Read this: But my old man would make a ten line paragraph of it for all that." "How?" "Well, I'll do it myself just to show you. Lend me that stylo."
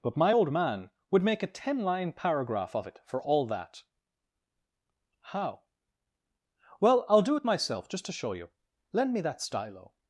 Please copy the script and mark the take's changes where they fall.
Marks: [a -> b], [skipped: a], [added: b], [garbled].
But my old man would make a ten line paragraph of it for all that." "How?" "Well, I'll do it myself just to show you. Lend me that stylo."